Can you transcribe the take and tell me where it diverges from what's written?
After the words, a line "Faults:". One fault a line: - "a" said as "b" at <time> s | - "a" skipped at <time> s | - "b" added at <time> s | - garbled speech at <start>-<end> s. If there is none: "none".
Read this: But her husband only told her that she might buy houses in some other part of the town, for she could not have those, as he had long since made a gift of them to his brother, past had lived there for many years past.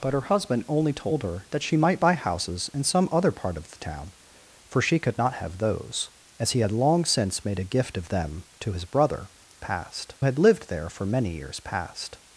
But her husband only told her that she might buy houses in some other part of the town, for she could not have those, as he had long since made a gift of them to his brother, past had lived there for many years past.
Faults:
none